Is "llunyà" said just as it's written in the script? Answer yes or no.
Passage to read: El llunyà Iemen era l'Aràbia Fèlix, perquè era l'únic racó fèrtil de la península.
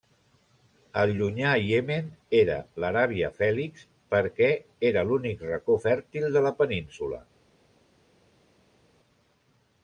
yes